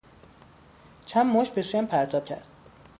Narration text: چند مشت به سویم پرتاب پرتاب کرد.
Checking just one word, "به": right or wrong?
right